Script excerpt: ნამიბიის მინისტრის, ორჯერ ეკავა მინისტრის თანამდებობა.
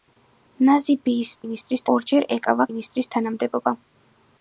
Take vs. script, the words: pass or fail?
pass